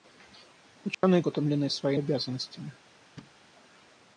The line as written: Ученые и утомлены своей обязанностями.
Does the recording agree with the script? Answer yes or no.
yes